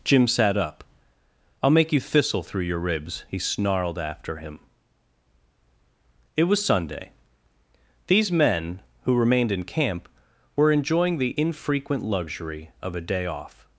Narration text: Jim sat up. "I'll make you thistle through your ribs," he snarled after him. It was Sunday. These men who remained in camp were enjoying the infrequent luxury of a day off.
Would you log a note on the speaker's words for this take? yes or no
no